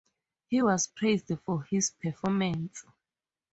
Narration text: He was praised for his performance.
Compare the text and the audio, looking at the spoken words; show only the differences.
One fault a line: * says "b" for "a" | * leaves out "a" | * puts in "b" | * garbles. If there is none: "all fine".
all fine